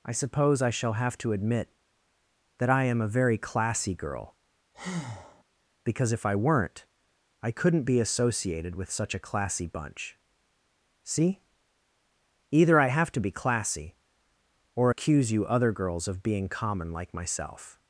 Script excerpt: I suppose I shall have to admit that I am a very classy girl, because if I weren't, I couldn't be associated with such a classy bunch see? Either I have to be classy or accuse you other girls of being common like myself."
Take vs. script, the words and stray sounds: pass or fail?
fail